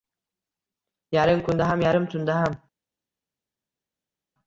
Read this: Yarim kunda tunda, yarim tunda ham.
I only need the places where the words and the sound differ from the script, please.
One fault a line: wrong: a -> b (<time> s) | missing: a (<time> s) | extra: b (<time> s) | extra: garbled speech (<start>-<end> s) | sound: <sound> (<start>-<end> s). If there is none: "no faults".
wrong: tunda -> ham (1.7 s)